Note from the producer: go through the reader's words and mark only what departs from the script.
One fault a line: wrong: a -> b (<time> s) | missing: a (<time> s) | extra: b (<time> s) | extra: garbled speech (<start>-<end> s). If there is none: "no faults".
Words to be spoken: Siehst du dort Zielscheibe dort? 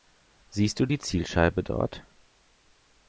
wrong: dort -> die (0.8 s)